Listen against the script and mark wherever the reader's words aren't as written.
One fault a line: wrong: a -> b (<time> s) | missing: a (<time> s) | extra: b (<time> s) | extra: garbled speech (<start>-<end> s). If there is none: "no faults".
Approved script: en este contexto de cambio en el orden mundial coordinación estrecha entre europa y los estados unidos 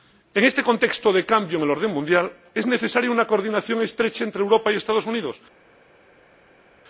extra: es necesaria una (2.5 s)